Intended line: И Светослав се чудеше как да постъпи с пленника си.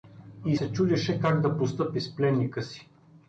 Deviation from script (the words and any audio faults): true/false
true